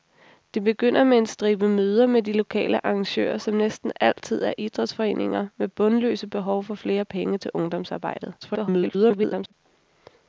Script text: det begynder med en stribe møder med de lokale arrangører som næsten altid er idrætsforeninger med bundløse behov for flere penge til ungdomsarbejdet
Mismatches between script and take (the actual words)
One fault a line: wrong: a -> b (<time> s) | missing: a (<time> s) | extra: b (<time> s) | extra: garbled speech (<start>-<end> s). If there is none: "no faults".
extra: garbled speech (8.4-9.5 s)